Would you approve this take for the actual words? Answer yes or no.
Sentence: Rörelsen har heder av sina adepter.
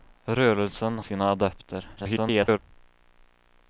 no